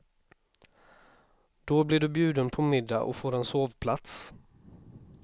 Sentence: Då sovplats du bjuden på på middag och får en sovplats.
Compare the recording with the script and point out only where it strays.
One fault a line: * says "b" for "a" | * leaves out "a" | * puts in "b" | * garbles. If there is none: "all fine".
* says "blir" for "sovplats"
* leaves out "på"